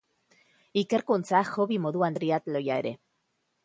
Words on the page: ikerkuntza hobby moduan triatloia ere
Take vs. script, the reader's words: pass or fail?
pass